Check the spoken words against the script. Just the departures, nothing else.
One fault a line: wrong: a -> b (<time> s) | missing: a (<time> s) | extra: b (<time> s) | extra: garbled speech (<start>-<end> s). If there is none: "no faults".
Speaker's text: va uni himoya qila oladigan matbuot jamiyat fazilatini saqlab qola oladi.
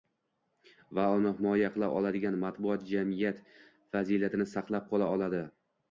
no faults